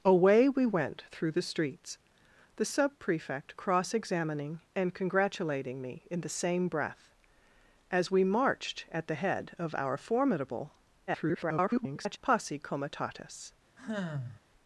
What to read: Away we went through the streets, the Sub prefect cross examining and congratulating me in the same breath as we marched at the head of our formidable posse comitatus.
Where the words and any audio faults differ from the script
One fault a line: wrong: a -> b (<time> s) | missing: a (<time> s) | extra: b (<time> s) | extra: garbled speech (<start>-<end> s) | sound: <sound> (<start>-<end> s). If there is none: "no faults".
extra: garbled speech (11.1-12.2 s)
sound: sigh (13.8-14.4 s)